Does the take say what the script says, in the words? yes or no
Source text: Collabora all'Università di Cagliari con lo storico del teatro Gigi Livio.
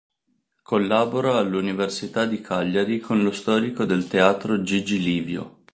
yes